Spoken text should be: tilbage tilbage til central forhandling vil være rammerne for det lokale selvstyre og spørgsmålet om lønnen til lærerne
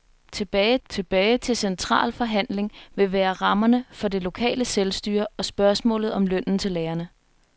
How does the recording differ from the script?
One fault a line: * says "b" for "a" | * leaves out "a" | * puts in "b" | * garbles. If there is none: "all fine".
all fine